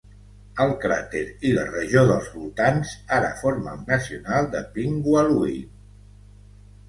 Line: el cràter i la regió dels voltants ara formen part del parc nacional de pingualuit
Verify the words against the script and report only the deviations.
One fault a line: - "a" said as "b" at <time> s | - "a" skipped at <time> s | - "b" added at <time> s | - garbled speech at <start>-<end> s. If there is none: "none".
- "part del parc" skipped at 3.8 s